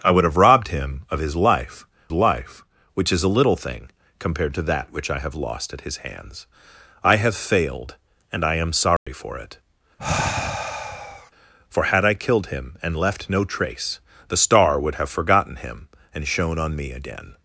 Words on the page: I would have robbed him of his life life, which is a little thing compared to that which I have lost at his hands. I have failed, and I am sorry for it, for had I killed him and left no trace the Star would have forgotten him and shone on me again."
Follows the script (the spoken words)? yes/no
yes